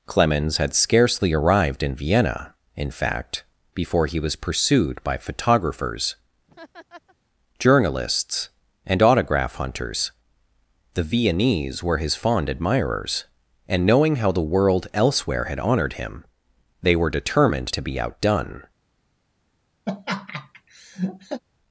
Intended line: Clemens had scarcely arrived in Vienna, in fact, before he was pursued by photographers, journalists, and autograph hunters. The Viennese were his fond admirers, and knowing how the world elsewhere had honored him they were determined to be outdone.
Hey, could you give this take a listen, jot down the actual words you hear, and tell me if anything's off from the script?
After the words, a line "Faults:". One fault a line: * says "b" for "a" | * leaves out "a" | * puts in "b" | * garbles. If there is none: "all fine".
Clemens had scarcely arrived in Vienna, in fact, before he was pursued by photographers, journalists, and autograph hunters. The Viennese were his fond admirers, and knowing how the world elsewhere had honored him they were determined to be outdone.
Faults:
all fine